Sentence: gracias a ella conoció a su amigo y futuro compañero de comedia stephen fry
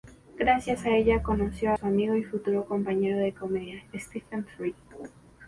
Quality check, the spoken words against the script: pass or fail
fail